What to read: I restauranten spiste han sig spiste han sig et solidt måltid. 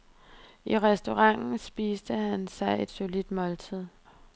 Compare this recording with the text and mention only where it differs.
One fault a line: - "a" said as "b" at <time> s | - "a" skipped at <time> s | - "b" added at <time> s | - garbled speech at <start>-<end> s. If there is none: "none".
- "spiste han sig" skipped at 2.8 s